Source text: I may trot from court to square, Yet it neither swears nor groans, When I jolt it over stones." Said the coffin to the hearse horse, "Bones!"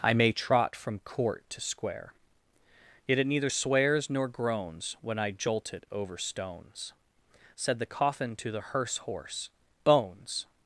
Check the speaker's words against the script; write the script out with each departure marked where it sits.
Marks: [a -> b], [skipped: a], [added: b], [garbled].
I may trot from court to square, Yet it neither swears nor groans, When I jolt it over stones." Said the coffin to the hearse horse, "Bones!"